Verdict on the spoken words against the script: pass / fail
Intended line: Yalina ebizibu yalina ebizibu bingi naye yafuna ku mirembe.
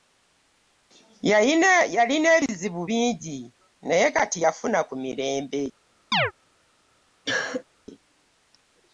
fail